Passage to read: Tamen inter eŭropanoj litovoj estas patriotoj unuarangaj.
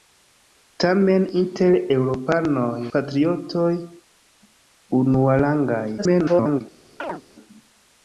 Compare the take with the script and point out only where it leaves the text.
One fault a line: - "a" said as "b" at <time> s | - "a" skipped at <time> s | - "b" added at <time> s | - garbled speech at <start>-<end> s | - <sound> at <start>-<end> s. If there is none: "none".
- "litovoj estas" skipped at 2.7 s
- garbled speech at 6.0-6.6 s
- chirp at 7.0-7.2 s